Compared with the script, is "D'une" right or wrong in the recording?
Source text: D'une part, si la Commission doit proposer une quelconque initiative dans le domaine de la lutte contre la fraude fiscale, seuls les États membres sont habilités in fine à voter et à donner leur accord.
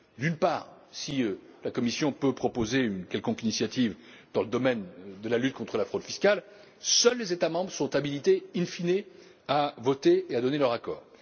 right